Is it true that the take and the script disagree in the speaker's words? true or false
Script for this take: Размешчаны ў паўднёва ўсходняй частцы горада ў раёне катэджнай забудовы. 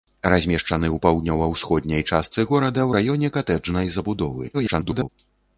true